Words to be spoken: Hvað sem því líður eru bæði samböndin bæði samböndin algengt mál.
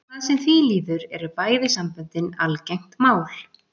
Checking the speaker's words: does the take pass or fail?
fail